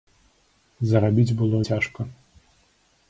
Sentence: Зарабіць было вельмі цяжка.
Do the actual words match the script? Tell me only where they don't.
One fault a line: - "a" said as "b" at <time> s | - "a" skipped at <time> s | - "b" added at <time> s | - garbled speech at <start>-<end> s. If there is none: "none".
- "вельмі" skipped at 1.6 s